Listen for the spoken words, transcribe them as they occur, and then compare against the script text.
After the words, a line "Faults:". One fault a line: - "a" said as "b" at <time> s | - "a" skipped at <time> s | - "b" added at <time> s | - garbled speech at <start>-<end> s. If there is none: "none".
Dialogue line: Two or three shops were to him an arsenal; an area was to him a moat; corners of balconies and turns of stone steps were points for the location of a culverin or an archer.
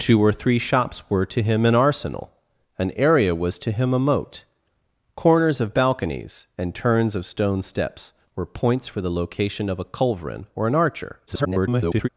Two or three shops were to him an arsenal; an area was to him a moat; corners of balconies and turns of stone steps were points for the location of a culverin or an archer. [garbled]
Faults:
- garbled speech at 11.3-12.1 s